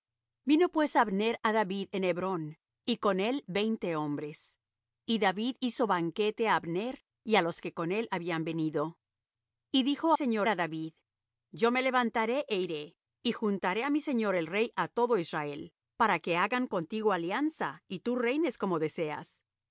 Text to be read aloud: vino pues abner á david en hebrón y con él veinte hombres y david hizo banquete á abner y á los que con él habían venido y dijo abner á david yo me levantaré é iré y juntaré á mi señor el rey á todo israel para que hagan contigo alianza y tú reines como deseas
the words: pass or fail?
fail